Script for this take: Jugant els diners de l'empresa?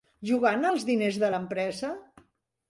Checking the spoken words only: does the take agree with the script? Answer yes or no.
yes